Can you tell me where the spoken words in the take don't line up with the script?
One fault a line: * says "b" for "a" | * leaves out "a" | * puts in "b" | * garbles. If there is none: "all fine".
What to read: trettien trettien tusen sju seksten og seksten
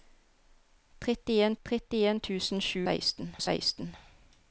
all fine